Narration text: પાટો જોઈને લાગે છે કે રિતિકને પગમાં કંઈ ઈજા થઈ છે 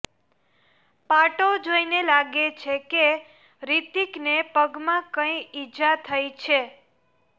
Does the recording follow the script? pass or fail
pass